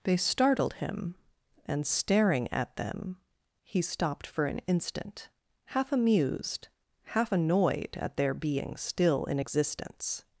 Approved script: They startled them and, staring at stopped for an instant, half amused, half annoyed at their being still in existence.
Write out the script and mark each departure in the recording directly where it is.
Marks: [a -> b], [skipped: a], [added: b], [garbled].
They startled [them -> him] and, staring at [added: them he] stopped for an instant, half amused, half annoyed at their being still in existence.